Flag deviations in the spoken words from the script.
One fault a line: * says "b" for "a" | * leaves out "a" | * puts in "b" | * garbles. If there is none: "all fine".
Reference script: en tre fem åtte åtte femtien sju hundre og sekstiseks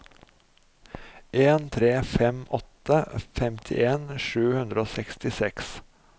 * leaves out "åtte"